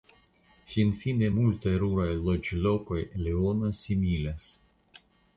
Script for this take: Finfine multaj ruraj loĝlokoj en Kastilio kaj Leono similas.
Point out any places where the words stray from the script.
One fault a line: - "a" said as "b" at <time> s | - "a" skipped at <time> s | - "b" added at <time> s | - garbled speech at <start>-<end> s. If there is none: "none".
- "en Kastilio kaj" skipped at 3.0 s